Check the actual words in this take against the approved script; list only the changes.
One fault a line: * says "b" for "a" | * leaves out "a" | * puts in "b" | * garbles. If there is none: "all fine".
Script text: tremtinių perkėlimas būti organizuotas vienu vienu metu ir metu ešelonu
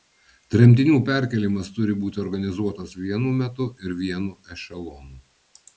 * puts in "turi"
* leaves out "vienu"
* says "vienu" for "metu"